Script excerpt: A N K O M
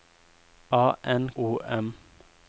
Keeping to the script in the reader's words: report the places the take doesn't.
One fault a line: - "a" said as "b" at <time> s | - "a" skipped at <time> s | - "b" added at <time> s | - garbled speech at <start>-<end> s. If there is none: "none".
- "K" skipped at 1.3 s